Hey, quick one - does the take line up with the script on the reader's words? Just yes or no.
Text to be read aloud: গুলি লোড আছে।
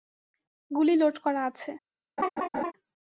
no